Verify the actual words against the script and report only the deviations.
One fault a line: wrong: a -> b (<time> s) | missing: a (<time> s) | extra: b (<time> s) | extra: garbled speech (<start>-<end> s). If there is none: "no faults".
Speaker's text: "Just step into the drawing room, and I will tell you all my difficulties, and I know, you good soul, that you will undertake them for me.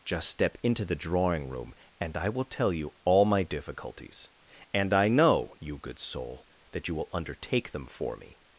no faults